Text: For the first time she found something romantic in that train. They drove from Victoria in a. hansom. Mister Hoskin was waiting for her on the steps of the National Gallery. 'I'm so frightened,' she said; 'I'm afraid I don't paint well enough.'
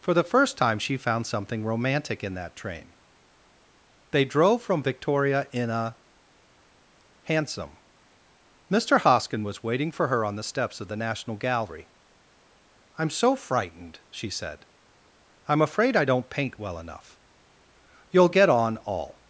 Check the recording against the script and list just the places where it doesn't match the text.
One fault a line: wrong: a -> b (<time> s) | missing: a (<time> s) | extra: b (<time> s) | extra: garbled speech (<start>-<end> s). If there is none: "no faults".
extra: You'll get on all (18.1 s)